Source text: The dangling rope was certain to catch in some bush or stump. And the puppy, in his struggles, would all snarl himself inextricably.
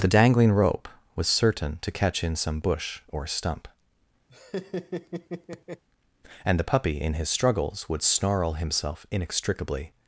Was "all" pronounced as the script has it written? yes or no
no